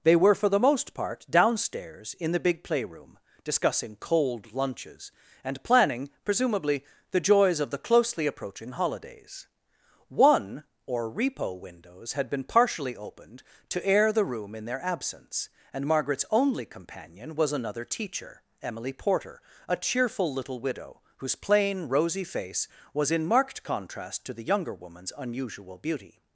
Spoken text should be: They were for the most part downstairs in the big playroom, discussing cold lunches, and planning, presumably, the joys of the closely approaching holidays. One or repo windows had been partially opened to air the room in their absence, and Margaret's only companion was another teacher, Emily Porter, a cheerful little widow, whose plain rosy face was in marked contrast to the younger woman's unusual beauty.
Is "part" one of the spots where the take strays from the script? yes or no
no